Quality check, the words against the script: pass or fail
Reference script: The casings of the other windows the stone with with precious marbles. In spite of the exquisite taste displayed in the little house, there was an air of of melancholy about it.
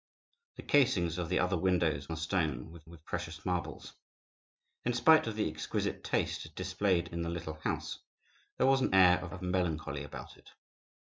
pass